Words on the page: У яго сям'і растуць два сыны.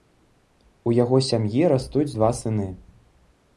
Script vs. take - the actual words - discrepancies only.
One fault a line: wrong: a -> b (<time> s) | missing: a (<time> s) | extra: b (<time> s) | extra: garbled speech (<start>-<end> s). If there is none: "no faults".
no faults